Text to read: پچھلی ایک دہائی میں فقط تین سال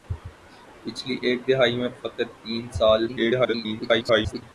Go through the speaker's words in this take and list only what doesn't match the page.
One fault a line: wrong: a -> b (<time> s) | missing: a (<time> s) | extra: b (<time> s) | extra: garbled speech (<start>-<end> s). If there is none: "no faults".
extra: garbled speech (3.1-4.4 s)